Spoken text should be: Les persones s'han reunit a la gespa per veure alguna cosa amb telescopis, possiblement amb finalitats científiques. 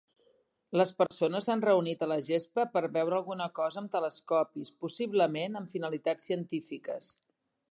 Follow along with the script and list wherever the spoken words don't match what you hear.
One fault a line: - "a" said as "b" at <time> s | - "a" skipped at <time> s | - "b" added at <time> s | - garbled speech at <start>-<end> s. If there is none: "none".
none